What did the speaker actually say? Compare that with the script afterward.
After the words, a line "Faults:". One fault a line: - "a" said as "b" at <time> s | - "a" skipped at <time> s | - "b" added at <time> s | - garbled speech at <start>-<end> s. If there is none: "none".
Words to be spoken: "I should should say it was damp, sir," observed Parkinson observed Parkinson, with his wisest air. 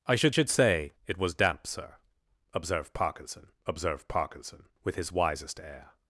"I should should say it was damp, sir," observed Parkinson observed Parkinson, with his wisest air.
Faults:
none